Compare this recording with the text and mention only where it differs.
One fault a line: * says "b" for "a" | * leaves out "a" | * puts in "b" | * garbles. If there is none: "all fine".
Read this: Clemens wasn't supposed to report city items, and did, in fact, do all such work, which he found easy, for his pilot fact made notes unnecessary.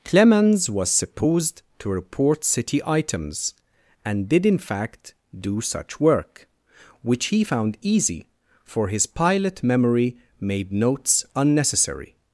* says "was" for "wasn't"
* leaves out "all"
* says "memory" for "fact"